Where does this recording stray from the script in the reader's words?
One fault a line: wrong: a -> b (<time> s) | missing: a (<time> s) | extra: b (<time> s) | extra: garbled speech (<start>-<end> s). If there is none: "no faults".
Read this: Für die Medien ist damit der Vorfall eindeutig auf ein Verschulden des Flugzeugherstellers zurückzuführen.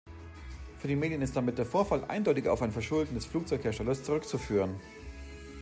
no faults